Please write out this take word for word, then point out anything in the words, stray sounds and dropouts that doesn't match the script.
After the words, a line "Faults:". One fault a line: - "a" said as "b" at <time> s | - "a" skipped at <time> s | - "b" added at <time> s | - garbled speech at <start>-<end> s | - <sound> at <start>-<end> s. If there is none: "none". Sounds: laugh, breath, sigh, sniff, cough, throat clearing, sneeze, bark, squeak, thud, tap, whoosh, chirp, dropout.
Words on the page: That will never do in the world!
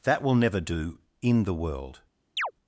That will never do in the world!
Faults:
- chirp at 2.4-2.5 s